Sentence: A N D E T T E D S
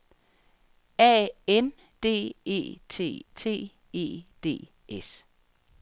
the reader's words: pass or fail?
pass